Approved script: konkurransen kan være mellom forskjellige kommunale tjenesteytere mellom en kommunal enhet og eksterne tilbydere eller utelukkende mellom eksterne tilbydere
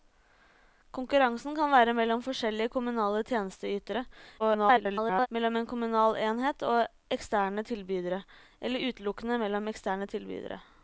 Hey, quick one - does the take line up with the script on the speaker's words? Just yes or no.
no